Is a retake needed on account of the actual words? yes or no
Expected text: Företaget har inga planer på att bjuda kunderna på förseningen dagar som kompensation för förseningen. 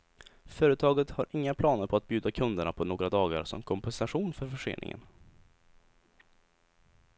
yes